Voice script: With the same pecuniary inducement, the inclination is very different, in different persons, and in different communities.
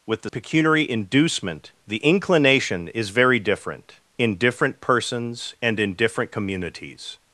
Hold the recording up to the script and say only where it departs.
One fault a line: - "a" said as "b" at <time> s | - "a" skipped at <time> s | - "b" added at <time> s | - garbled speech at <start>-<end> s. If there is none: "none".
- "same" skipped at 0.3 s